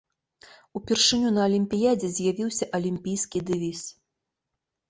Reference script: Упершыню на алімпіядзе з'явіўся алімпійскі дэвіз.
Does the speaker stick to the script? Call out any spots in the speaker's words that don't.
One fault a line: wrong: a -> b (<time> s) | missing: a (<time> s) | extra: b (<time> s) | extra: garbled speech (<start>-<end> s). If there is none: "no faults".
no faults